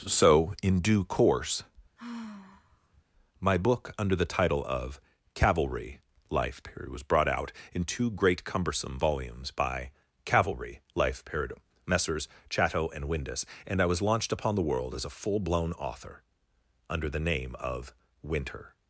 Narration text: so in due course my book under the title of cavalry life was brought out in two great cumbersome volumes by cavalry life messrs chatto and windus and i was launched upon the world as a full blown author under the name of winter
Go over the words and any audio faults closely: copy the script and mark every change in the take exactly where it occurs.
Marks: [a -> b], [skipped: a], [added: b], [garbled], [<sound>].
so in due course [sigh] my book under the title of cavalry life [added: period] was brought out in two great cumbersome volumes by cavalry life [added: period] messrs chatto and windus and i was launched upon the world as a full blown author under the name of winter